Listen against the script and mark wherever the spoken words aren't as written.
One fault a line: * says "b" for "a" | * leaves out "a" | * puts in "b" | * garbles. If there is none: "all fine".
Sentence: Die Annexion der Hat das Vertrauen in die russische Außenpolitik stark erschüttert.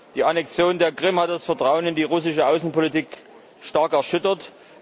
* puts in "Krim"